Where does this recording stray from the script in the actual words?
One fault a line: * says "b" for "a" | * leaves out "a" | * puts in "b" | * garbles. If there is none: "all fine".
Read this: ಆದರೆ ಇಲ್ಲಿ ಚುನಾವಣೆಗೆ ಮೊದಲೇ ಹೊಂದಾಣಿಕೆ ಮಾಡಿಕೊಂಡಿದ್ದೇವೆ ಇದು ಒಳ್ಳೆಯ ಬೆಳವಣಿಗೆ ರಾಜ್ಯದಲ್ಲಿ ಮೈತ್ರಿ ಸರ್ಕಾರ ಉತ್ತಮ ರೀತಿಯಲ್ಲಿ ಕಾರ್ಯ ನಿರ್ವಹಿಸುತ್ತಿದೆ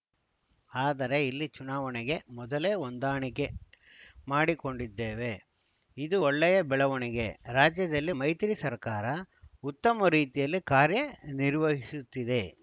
all fine